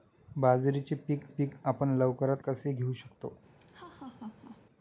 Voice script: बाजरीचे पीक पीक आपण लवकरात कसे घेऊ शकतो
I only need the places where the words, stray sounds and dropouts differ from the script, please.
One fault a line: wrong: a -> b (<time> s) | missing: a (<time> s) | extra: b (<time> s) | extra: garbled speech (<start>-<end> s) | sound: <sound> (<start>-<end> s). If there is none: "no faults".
sound: laugh (3.6-4.6 s)